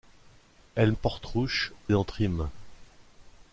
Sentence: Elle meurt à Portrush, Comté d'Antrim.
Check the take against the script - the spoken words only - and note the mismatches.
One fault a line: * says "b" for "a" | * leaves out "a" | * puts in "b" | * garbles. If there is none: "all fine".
* leaves out "meurt"
* leaves out "Comté"